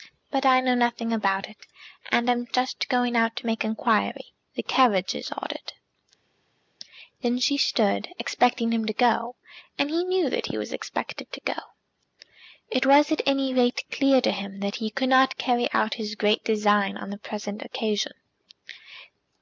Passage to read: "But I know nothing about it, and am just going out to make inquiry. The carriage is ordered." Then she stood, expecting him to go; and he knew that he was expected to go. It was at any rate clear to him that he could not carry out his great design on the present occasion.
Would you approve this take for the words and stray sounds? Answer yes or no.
yes